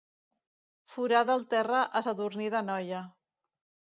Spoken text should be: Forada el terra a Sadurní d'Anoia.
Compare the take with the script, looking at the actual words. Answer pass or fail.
pass